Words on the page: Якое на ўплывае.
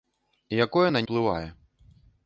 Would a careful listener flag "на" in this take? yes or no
no